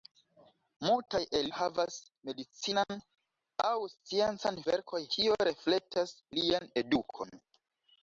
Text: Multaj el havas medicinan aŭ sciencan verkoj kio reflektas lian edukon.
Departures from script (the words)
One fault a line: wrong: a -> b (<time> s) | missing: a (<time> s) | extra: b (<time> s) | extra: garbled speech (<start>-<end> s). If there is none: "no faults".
no faults